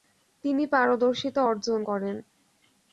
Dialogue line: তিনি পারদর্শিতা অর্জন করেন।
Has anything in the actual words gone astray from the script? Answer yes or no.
no